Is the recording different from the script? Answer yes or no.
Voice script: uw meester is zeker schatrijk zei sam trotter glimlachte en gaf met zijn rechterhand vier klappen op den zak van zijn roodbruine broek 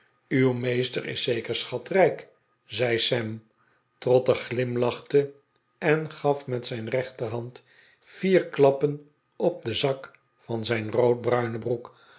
no